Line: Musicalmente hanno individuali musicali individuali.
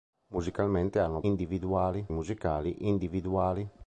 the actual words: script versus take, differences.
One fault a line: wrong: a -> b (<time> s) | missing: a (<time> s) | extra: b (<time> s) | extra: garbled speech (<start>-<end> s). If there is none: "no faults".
no faults